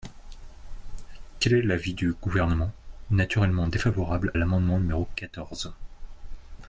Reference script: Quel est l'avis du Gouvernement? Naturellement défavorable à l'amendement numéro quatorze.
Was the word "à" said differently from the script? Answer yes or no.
yes